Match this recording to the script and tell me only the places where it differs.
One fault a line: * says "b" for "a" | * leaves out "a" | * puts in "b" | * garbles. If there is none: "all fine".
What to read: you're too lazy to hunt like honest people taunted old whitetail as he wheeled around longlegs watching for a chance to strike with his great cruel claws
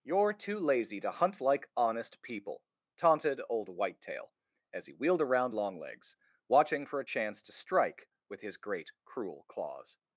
all fine